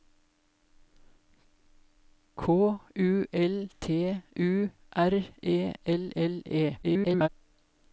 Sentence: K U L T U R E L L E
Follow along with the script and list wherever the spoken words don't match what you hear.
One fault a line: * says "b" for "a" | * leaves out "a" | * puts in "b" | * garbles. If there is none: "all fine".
* garbles